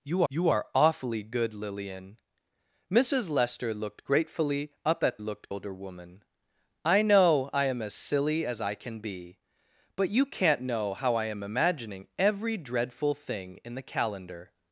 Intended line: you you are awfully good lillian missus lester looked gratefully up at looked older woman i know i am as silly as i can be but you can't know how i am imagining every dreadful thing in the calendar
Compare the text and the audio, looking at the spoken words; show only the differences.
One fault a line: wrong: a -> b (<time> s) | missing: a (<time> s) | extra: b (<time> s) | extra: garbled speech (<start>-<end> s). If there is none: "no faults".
no faults